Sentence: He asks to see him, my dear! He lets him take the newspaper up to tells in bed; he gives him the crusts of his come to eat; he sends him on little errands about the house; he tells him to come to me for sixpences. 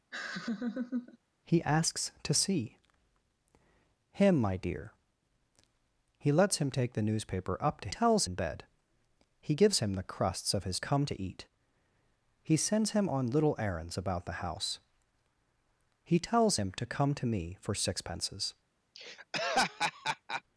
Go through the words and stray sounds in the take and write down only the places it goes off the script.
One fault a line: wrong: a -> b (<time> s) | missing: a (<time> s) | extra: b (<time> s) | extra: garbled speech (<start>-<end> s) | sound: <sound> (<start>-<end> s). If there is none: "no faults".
sound: laugh (0.1-1.2 s)
sound: laugh (18.9-20.4 s)